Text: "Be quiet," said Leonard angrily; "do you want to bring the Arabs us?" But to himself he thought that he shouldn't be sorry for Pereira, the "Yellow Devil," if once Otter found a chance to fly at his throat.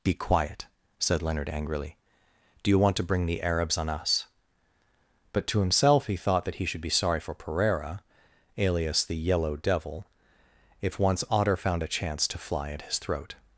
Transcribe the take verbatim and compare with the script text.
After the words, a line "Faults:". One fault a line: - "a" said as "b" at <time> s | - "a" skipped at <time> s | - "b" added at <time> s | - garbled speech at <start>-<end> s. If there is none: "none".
"Be quiet," said Leonard angrily; "do you want to bring the Arabs on us?" But to himself he thought that he should be sorry for Pereira, alias the "Yellow Devil," if once Otter found a chance to fly at his throat.
Faults:
- "on" added at 3.8 s
- "shouldn't" said as "should" at 6.6 s
- "alias" added at 8.6 s